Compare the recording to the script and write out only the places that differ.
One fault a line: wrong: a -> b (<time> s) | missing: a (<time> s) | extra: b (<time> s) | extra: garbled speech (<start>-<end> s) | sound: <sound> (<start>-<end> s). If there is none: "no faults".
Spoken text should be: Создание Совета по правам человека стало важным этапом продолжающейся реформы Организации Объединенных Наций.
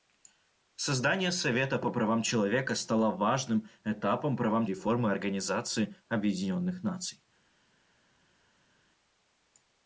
wrong: продолжающейся -> правам (4.3 s)